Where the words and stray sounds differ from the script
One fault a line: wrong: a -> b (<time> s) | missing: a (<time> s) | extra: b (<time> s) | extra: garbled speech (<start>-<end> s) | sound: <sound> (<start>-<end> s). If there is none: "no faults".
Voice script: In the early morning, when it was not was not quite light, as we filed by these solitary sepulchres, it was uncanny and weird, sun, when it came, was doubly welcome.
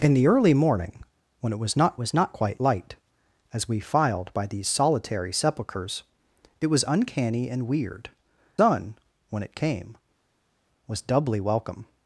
no faults